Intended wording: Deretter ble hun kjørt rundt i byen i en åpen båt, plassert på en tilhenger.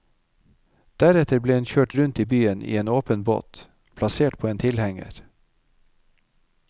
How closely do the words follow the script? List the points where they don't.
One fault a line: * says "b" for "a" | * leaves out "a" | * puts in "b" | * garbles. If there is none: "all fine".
all fine